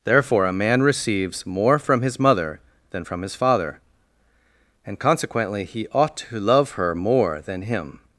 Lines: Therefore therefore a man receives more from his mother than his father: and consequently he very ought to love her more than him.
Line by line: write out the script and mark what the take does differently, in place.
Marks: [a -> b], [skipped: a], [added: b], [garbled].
Therefore [skipped: therefore] a man receives more from his mother than [added: from] his father: and consequently he [skipped: very] ought to love her more than him.